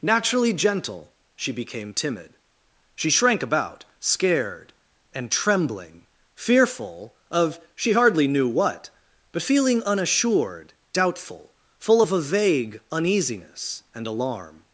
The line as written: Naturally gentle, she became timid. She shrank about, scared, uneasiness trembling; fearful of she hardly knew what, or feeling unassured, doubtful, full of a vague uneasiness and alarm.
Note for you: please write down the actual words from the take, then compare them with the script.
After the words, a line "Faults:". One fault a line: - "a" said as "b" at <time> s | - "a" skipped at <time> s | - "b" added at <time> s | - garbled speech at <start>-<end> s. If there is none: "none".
Naturally gentle, she became timid. She shrank about, scared, and trembling; fearful of she hardly knew what, but feeling unassured, doubtful, full of a vague uneasiness and alarm.
Faults:
- "uneasiness" said as "and" at 5.1 s
- "or" said as "but" at 9.3 s